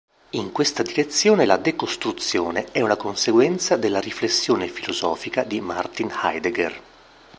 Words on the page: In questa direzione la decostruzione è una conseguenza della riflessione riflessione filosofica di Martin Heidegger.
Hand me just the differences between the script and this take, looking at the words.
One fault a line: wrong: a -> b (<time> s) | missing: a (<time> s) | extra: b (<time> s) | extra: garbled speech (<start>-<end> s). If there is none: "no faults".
missing: riflessione (4.7 s)